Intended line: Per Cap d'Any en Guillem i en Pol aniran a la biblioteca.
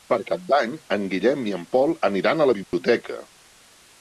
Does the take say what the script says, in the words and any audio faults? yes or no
no